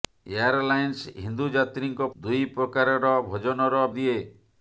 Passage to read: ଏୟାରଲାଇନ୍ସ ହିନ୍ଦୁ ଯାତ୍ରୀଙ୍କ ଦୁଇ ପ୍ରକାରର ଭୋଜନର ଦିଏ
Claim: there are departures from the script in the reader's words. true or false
false